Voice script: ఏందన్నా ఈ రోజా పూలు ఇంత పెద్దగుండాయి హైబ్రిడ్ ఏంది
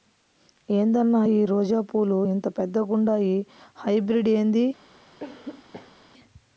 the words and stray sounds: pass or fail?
fail